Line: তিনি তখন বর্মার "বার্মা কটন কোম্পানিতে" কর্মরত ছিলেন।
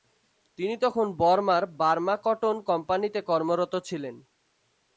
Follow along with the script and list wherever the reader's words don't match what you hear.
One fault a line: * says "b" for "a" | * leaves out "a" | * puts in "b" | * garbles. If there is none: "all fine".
all fine